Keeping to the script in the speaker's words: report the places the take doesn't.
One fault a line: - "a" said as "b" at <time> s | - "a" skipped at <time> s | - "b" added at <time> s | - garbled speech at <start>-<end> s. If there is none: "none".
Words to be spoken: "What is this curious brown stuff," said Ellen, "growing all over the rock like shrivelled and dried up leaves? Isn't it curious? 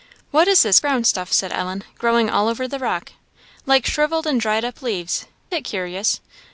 - "curious" skipped at 0.8 s
- "Isn't" skipped at 5.2 s